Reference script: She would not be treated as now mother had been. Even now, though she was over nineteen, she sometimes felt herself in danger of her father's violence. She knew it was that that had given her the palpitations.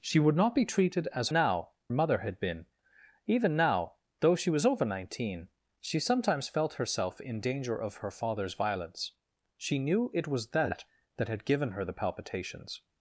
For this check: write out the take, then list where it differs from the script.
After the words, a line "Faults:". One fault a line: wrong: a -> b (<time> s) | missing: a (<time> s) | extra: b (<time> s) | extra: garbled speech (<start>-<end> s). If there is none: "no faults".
She would not be treated as now mother had been. Even now, though she was over nineteen, she sometimes felt herself in danger of her father's violence. She knew it was that that had given her the palpitations.
Faults:
no faults